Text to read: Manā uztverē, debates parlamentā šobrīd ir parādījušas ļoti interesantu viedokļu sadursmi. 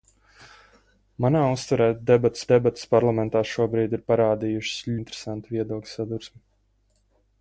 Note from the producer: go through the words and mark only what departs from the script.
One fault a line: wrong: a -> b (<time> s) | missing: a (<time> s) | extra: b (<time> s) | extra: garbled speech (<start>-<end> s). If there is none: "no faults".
extra: debates (2.5 s)
missing: ļoti (4.8 s)